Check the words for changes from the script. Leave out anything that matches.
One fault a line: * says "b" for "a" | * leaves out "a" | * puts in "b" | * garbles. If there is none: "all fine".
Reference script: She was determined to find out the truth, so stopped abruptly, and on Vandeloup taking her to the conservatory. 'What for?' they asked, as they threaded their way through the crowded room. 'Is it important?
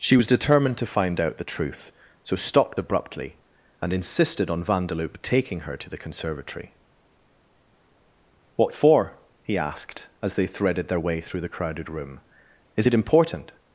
* puts in "insisted"
* says "he" for "they"